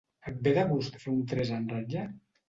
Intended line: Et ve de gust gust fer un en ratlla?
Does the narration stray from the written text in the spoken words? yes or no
yes